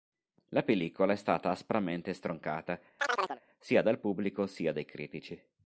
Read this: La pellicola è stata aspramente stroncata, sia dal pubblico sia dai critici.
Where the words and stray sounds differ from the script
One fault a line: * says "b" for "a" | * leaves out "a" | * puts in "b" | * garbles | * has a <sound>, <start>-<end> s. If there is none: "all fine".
* has a chirp, 3.0-3.4 s